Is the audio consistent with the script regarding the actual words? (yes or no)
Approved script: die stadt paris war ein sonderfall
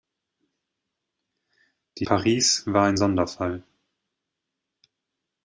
no